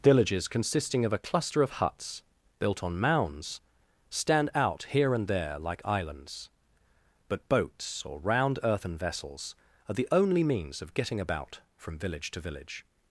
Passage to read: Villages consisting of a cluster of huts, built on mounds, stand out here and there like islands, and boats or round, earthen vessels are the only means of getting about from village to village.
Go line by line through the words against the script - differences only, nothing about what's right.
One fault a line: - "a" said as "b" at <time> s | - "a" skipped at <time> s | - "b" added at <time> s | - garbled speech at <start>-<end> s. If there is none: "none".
- "and" said as "but" at 7.3 s